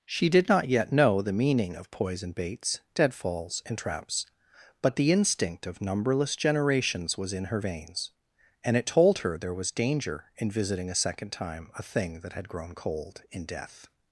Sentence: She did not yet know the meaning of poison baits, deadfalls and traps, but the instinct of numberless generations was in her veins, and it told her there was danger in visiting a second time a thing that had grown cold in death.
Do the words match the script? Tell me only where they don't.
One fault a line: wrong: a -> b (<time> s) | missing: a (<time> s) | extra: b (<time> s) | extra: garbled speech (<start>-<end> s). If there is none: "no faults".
no faults